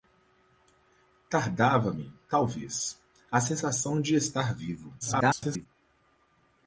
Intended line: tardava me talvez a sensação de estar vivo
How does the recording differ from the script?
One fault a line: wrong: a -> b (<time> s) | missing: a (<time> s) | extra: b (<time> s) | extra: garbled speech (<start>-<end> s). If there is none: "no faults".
extra: garbled speech (5.0-5.7 s)